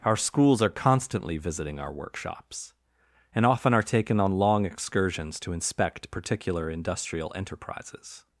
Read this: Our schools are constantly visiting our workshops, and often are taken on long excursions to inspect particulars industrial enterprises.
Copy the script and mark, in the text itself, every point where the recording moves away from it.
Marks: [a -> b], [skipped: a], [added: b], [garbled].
Our schools are constantly visiting our workshops, and often are taken on long excursions to inspect [particulars -> particular] industrial enterprises.